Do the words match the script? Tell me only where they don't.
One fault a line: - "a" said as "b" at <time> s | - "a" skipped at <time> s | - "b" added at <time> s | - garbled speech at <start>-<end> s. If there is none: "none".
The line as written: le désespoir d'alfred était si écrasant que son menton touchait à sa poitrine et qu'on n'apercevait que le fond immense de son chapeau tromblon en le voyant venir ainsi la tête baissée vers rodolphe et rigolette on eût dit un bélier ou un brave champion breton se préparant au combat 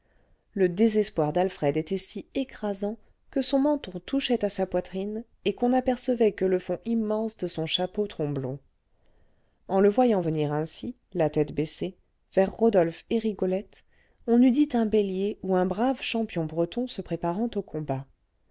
none